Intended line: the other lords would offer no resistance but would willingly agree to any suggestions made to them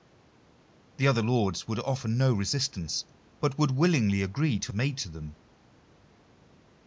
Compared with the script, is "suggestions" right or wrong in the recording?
wrong